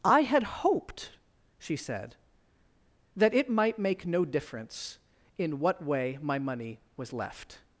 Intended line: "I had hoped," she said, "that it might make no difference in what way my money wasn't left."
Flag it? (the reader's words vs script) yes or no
yes